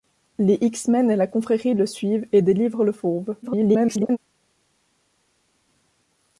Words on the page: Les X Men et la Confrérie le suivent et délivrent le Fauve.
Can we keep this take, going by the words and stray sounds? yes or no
no